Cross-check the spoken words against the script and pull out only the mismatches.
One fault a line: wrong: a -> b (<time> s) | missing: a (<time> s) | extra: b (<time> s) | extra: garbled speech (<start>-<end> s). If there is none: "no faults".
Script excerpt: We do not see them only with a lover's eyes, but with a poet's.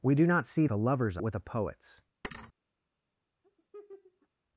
missing: them only with (0.7 s)
missing: eyes but (1.2 s)